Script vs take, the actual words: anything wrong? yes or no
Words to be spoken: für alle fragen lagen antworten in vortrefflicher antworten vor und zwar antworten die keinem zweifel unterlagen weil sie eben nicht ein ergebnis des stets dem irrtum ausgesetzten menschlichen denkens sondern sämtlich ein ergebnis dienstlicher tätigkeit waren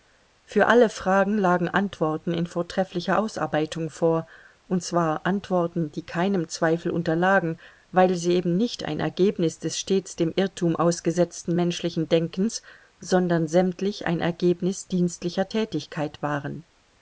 yes